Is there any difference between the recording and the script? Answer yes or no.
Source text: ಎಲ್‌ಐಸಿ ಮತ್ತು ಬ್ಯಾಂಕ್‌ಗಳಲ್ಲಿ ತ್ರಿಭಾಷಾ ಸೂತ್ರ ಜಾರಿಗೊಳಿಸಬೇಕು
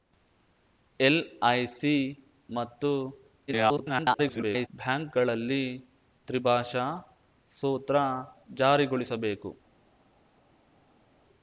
yes